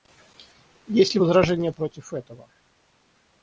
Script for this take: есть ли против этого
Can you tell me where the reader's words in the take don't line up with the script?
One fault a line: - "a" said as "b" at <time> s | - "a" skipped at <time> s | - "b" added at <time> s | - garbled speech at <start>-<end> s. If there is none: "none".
- "возражения" added at 1.2 s